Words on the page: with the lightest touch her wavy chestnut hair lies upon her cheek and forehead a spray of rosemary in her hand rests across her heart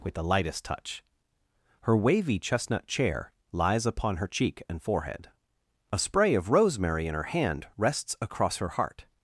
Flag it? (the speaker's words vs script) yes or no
yes